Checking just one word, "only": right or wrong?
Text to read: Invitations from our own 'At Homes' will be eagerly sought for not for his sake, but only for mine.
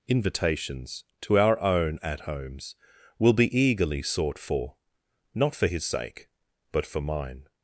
wrong